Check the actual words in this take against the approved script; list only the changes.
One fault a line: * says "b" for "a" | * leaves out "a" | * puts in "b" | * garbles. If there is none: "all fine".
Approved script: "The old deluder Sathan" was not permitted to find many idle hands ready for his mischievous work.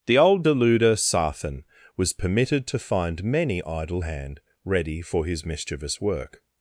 * leaves out "not"
* says "hand" for "hands"